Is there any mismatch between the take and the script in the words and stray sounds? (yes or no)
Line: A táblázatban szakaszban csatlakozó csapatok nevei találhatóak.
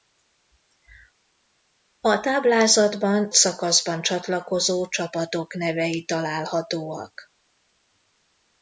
no